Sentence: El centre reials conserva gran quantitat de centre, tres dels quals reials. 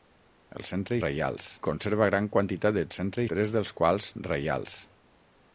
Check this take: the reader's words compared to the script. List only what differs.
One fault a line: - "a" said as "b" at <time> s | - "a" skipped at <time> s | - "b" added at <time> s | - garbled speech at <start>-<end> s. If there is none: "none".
none